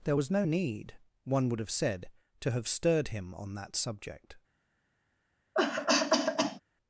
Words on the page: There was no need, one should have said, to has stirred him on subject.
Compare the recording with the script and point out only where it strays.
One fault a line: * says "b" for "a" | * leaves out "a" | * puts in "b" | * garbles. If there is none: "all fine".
* says "would" for "should"
* says "have" for "has"
* puts in "that"